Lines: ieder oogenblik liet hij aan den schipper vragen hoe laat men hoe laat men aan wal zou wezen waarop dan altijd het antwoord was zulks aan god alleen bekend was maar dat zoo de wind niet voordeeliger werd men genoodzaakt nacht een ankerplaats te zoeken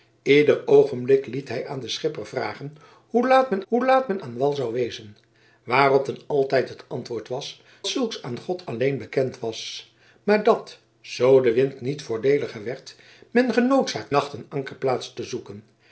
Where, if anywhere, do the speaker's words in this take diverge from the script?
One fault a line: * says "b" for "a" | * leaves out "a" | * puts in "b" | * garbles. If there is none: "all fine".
all fine